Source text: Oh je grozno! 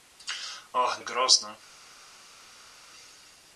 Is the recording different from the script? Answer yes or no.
no